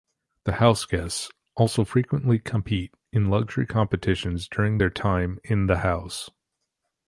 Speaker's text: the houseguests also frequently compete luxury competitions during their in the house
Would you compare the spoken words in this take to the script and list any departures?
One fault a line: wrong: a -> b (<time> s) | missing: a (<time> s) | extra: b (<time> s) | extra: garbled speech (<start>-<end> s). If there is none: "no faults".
extra: in (3.1 s)
extra: time (4.9 s)